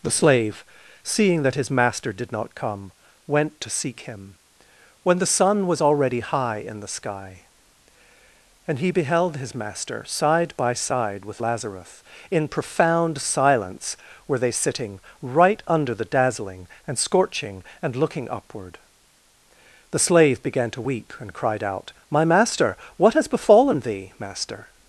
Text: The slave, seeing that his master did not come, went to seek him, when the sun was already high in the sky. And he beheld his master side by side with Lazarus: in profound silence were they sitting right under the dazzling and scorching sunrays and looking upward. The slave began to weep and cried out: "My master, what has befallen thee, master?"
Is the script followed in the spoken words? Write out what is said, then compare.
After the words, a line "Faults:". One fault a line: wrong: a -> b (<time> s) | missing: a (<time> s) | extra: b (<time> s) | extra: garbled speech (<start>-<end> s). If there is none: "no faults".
The slave, seeing that his master did not come, went to seek him, when the sun was already high in the sky. And he beheld his master side by side with Lazarus: in profound silence were they sitting right under the dazzling and scorching and looking upward. The slave began to weep and cried out: "My master, what has befallen thee, master?"
Faults:
missing: sunrays (17.6 s)